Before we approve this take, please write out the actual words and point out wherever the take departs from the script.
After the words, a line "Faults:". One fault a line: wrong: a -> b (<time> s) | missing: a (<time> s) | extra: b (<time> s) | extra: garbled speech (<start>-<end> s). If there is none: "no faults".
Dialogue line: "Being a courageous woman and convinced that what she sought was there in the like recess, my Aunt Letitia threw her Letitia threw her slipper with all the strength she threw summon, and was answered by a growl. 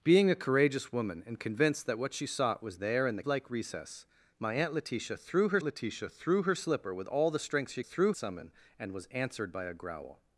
"Being a courageous woman and convinced that what she sought was there in the like recess, my Aunt Letitia threw her Letitia threw her slipper with all the strength she threw summon, and was answered by a growl.
Faults:
no faults